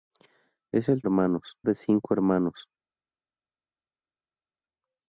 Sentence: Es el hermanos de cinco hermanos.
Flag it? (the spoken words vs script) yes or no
no